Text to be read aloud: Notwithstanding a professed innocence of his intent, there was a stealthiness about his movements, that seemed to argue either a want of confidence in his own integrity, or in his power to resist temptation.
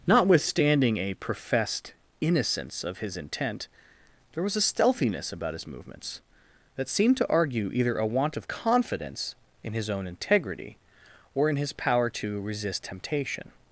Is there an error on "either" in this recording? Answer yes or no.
no